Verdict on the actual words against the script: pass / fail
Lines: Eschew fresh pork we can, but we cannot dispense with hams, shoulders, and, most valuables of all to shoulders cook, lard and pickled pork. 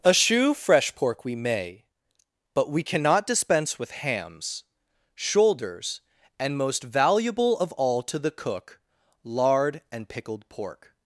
fail